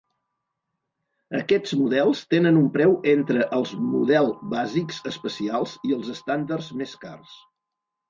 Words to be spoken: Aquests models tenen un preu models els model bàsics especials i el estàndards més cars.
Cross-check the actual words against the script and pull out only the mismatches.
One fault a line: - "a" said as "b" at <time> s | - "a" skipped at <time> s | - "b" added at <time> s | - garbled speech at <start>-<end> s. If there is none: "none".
- "models" said as "entre" at 3.1 s
- "el" said as "els" at 6.0 s